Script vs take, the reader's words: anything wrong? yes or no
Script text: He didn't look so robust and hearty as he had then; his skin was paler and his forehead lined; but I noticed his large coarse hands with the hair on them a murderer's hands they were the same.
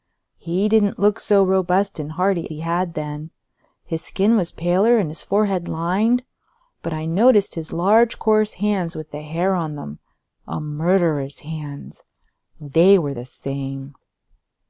yes